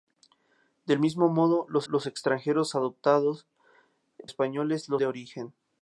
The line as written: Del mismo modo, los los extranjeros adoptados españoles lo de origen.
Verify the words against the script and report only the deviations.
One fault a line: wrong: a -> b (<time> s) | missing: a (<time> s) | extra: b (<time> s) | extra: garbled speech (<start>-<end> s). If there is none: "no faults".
no faults